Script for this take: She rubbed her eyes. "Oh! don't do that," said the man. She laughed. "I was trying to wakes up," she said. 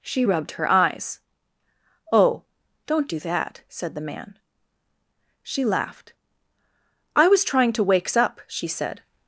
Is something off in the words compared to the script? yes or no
no